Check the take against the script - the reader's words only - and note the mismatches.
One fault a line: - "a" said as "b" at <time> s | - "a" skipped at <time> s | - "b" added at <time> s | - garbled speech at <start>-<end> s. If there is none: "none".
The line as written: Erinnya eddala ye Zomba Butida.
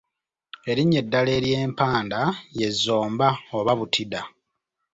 - "ery'empanda" added at 1.4 s
- "oba" added at 3.6 s